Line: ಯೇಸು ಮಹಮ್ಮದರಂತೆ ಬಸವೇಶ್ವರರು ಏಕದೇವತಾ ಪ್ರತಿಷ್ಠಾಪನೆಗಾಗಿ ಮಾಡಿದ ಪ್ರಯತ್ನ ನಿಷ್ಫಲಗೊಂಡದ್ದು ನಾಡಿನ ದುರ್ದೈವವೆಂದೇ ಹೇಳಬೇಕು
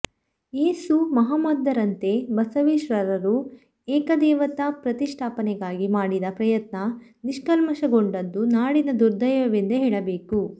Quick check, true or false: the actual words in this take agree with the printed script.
true